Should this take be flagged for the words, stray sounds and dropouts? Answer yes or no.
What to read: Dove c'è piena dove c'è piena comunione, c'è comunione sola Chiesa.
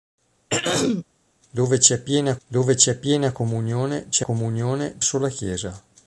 yes